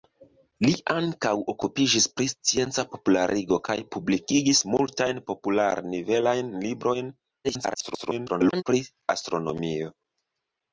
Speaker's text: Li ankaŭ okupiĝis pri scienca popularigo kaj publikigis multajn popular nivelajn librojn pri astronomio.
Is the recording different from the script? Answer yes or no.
yes